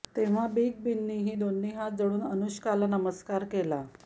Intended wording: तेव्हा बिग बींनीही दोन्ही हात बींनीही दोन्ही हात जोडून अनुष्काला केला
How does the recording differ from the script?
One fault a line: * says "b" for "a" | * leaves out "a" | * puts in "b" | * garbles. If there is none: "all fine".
* leaves out "बींनीही दोन्ही हात"
* puts in "नमस्कार"